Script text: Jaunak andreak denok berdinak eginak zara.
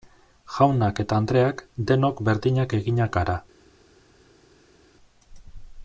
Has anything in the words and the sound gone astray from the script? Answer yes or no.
yes